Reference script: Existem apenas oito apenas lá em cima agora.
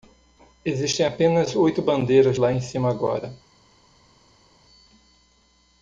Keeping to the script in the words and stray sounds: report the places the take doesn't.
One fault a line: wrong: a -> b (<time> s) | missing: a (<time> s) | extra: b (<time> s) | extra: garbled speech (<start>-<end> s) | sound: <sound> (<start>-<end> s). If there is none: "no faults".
wrong: apenas -> bandeiras (1.8 s)